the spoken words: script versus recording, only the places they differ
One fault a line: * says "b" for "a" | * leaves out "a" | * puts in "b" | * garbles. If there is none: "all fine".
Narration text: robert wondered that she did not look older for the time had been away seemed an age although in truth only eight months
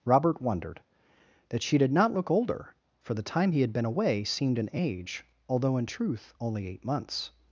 * puts in "he"